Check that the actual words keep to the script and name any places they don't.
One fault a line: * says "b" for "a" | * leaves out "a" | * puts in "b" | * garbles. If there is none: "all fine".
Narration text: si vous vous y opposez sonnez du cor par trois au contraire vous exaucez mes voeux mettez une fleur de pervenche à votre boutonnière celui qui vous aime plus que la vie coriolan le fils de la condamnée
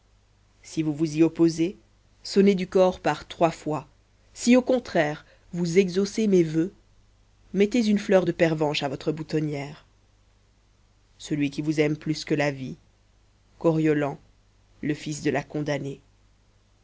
* puts in "fois si"